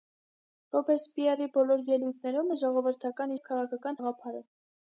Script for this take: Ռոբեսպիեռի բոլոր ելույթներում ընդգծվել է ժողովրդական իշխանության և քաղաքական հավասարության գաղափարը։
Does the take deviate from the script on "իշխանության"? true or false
true